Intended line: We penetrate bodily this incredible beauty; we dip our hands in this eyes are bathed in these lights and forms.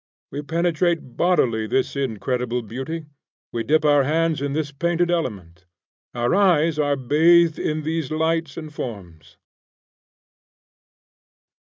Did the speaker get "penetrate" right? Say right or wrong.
right